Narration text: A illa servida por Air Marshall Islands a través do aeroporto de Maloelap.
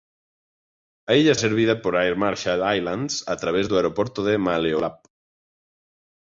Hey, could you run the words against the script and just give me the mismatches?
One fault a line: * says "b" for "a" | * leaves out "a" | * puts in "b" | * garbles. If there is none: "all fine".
all fine